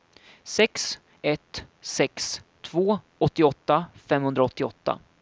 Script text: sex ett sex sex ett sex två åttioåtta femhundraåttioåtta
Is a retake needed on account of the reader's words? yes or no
yes